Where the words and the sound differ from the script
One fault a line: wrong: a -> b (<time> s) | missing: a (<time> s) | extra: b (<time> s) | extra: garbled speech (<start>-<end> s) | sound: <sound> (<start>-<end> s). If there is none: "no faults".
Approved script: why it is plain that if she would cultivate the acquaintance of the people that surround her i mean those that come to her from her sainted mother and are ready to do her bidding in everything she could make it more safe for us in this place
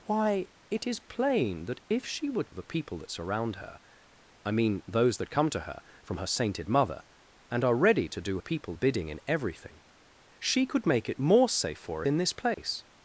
missing: cultivate the acquaintance (2.5 s)
wrong: her -> people (8.4 s)
missing: us (12.0 s)
sound: dropout (12.5-12.6 s)